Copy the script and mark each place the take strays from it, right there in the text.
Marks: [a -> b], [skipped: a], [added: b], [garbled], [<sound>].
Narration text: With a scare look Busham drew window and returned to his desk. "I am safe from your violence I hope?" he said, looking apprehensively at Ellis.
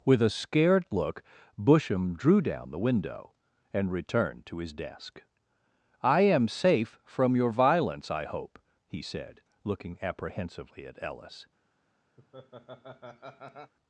With a [scare -> scared] look Busham drew [added: down the] window and returned to his desk. "I am safe from your violence I hope?" he said, looking apprehensively at Ellis. [laugh]